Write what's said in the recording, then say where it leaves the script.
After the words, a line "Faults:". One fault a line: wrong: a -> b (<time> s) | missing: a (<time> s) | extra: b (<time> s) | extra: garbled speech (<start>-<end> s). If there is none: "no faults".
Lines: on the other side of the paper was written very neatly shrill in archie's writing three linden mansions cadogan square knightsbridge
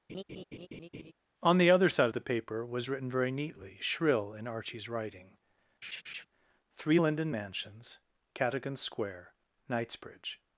on the other side of the paper was written very neatly shrill in archie's writing three linden mansions cadogan square knightsbridge
Faults:
no faults